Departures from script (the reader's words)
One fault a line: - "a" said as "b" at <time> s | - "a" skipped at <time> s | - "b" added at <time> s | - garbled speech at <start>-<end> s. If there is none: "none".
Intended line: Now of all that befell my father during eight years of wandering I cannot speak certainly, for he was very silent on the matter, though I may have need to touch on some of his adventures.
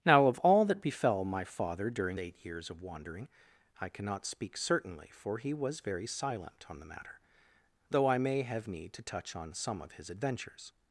none